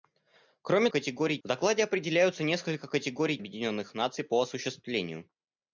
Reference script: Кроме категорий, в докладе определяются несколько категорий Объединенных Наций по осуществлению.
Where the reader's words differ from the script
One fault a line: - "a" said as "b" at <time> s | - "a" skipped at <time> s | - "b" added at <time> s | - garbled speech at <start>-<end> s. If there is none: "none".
none